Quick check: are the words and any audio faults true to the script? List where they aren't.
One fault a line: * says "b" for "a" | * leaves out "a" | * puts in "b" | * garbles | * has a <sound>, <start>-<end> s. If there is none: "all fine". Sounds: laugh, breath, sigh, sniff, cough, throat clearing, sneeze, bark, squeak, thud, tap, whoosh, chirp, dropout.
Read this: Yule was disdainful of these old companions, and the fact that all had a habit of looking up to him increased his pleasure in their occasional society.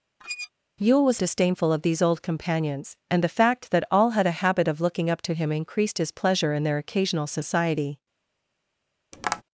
* has a squeak, 0.2-0.5 s
* has a tap, 9.1-9.4 s